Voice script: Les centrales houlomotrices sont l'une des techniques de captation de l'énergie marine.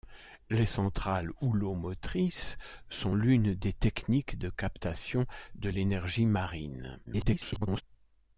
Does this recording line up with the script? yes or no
no